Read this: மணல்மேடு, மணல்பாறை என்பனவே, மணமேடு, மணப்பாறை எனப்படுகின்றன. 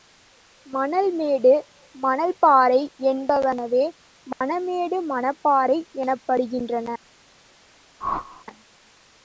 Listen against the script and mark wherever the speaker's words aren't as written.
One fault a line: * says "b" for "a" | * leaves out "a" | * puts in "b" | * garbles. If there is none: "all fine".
all fine